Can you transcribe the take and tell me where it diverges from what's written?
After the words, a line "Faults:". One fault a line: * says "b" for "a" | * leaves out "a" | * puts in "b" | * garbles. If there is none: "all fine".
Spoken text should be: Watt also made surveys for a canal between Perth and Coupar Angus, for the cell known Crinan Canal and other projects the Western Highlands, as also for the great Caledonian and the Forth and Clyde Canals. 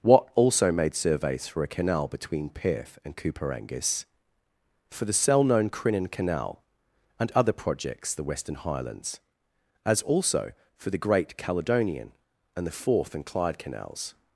Watt also made surveys for a canal between Perth and Coupar Angus, for the cell known Crinan Canal and other projects the Western Highlands, as also for the great Caledonian and the Forth and Clyde Canals.
Faults:
all fine